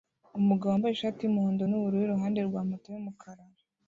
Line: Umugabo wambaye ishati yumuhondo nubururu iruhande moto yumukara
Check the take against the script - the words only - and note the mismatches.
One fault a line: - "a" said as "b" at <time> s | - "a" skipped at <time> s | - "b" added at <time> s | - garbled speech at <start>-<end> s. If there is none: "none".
- "rwa" added at 2.5 s